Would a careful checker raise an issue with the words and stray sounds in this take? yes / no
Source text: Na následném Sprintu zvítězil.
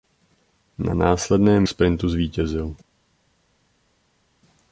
no